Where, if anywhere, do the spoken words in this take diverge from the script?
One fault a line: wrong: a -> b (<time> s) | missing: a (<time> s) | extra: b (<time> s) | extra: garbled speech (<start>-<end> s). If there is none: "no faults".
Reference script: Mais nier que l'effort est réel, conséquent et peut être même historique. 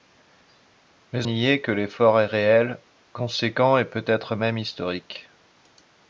no faults